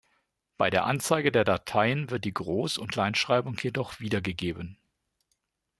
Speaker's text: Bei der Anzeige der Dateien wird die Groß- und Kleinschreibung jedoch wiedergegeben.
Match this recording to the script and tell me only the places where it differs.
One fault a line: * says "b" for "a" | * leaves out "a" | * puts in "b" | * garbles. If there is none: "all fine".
all fine